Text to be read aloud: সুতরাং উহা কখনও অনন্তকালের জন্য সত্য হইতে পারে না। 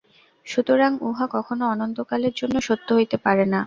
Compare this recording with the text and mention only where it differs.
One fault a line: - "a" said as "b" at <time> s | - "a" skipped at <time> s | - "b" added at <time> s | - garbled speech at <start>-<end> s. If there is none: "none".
none